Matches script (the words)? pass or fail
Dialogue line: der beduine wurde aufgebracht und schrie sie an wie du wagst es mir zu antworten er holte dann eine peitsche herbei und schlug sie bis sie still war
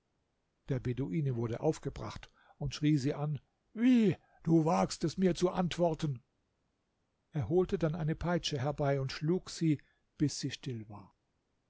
pass